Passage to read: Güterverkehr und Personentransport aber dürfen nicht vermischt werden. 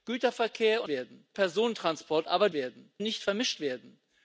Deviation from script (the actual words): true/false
true